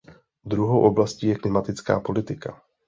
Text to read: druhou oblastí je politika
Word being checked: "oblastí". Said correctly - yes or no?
yes